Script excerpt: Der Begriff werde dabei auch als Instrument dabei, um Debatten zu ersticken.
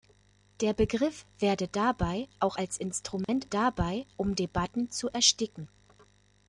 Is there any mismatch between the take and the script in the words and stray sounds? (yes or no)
yes